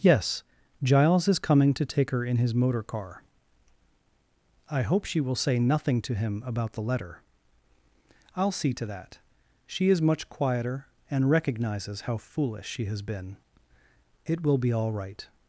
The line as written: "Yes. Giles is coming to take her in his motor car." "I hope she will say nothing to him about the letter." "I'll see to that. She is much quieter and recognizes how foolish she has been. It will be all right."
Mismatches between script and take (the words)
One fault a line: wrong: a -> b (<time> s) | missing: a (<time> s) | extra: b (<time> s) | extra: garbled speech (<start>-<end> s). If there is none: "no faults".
no faults